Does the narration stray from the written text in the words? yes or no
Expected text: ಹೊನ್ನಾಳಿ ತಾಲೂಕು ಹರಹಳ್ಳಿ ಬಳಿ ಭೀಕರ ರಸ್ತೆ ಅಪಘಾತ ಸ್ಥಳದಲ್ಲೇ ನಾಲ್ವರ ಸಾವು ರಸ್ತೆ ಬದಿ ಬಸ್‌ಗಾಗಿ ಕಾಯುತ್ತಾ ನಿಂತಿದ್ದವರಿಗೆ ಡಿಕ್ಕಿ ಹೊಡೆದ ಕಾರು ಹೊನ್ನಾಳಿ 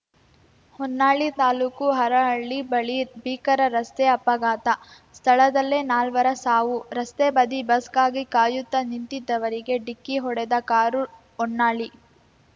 no